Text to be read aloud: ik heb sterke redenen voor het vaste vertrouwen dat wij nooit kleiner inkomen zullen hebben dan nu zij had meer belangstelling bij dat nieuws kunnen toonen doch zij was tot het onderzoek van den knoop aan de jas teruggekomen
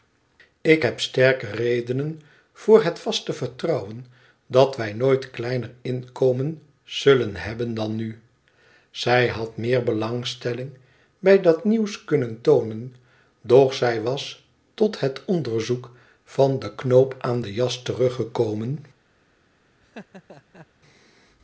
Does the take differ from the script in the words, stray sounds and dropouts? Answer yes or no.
yes